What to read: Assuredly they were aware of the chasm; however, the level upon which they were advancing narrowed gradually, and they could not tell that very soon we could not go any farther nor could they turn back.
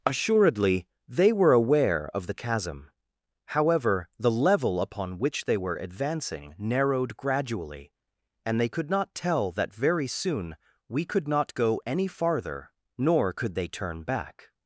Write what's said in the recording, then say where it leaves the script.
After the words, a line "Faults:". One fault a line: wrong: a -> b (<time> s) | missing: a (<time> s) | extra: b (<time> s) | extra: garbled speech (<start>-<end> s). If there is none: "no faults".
Assuredly they were aware of the chasm; however, the level upon which they were advancing narrowed gradually, and they could not tell that very soon we could not go any farther nor could they turn back.
Faults:
no faults